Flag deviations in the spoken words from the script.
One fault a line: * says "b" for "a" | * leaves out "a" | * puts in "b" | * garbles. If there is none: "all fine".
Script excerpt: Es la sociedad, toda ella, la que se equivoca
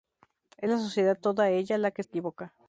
* leaves out "se"